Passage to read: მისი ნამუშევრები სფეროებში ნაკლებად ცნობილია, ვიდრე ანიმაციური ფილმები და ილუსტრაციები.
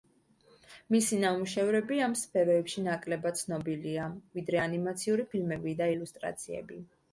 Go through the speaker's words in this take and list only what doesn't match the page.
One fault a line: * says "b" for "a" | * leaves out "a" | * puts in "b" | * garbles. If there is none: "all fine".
* puts in "ამ"